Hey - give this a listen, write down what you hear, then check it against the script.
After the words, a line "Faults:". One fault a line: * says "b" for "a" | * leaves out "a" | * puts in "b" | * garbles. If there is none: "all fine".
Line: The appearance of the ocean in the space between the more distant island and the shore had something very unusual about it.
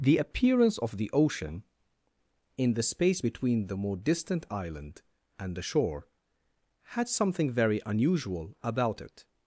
The appearance of the ocean in the space between the more distant island and the shore had something very unusual about it.
Faults:
all fine